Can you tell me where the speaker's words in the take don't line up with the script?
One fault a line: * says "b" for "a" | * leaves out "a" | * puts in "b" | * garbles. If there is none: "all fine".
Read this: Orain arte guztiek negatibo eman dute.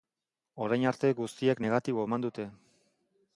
all fine